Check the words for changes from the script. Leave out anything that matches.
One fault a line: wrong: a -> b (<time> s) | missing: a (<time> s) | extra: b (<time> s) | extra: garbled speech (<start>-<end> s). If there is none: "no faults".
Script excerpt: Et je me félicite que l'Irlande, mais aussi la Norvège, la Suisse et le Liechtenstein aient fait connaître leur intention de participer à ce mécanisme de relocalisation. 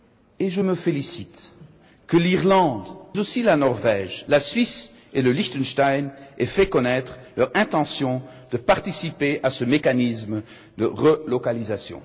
missing: mais (2.9 s)